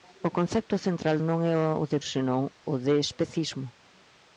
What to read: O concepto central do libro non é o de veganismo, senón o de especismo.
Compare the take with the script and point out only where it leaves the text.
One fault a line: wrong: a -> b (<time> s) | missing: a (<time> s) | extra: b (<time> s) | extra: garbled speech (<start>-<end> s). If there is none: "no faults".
missing: do libro (1.1 s)
missing: veganismo (2.0 s)